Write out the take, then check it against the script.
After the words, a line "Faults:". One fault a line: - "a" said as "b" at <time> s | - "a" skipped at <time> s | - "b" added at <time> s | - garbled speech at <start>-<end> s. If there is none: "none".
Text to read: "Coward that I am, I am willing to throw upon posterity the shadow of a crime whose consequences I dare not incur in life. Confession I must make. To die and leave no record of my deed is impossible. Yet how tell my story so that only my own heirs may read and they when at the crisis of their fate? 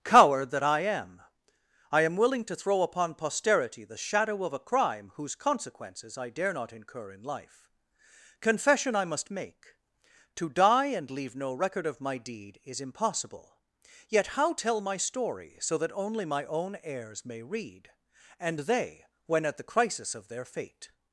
"Coward that I am, I am willing to throw upon posterity the shadow of a crime whose consequences I dare not incur in life. Confession I must make. To die and leave no record of my deed is impossible. Yet how tell my story so that only my own heirs may read and they when at the crisis of their fate?
Faults:
none